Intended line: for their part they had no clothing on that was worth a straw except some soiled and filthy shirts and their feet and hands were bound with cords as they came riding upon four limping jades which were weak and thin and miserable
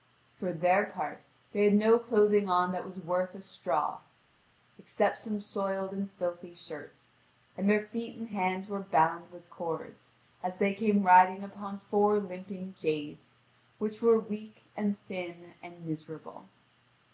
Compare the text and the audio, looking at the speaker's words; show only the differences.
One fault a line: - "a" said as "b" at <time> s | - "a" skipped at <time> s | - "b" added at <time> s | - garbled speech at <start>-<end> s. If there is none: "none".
none